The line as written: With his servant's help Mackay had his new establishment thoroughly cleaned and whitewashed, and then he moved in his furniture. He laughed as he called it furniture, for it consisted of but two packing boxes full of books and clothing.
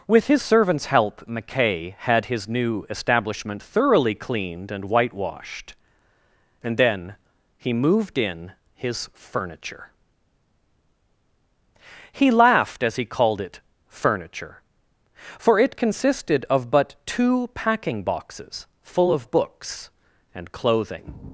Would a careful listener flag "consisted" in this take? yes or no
no